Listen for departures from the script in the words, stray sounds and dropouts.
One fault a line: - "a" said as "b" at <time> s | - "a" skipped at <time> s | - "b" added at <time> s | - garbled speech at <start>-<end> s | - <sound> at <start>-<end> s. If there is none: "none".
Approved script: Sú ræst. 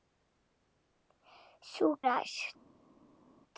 none